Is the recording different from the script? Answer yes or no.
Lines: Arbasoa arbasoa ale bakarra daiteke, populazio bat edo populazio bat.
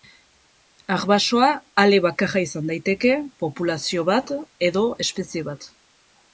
yes